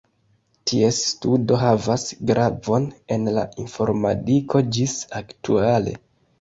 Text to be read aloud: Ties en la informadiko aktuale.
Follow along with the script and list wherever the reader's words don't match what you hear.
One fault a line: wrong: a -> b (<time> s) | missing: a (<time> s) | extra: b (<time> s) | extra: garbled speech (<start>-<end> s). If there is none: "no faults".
extra: studo havas gravon (1.1 s)
extra: ĝis (4.8 s)